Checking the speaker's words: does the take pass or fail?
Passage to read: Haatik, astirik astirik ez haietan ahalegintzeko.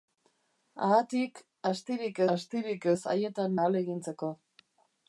pass